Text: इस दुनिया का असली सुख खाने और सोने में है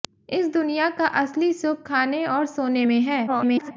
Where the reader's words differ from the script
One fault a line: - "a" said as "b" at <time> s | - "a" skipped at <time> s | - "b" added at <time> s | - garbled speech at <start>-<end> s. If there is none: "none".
- garbled speech at 3.3-3.7 s